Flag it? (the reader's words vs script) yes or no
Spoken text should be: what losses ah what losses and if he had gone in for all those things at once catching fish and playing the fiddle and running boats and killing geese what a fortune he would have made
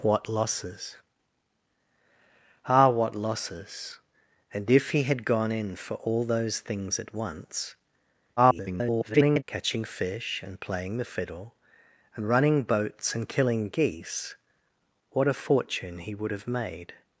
yes